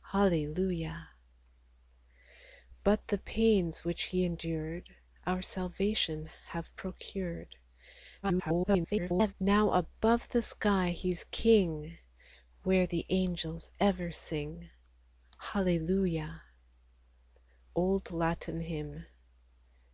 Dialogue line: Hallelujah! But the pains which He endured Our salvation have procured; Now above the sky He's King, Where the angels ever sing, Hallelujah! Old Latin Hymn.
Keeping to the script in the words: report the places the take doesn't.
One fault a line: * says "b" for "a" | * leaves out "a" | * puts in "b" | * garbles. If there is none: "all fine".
* garbles